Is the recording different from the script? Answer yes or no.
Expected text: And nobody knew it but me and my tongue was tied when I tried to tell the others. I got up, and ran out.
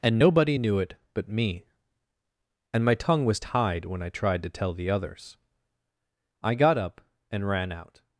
no